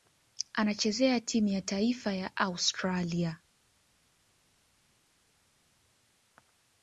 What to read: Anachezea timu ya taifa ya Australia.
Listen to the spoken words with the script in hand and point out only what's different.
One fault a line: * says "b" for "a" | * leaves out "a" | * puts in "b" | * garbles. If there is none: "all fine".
all fine